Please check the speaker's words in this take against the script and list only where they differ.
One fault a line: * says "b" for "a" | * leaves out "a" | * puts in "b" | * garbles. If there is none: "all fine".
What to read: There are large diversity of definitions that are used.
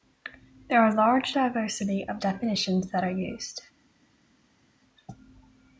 all fine